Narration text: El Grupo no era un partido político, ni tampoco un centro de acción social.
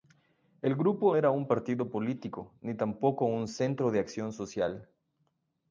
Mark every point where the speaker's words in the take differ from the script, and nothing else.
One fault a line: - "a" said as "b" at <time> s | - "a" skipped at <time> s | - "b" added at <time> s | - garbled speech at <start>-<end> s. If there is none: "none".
- "no" skipped at 1.1 s